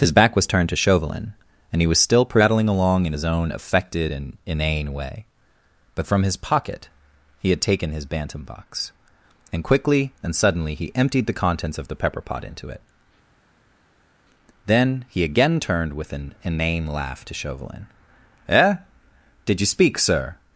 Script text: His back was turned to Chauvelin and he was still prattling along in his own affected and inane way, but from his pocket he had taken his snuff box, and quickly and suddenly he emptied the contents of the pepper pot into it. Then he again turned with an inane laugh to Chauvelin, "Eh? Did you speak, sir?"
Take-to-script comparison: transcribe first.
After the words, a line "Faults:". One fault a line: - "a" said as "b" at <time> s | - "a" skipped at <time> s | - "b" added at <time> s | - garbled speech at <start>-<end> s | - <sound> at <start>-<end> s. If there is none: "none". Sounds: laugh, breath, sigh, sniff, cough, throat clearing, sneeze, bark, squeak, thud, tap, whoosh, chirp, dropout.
His back was turned to Chauvelin and he was still prattling along in his own affected and inane way, but from his pocket he had taken his bantam box, and quickly and suddenly he emptied the contents of the pepper pot into it. Then he again turned with an inane laugh to Chauvelin, "Eh? Did you speak, sir?"
Faults:
- "snuff" said as "bantam" at 8.0 s